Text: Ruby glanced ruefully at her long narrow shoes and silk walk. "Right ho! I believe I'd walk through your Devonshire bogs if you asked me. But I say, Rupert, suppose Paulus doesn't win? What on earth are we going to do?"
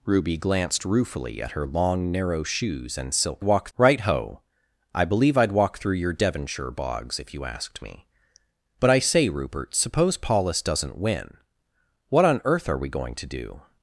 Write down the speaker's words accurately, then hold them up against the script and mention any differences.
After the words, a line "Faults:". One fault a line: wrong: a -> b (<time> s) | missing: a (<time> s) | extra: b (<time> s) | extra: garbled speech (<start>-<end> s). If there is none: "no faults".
Ruby glanced ruefully at her long narrow shoes and silk walk. "Right ho! I believe I'd walk through your Devonshire bogs if you asked me. But I say, Rupert, suppose Paulus doesn't win? What on earth are we going to do?"
Faults:
no faults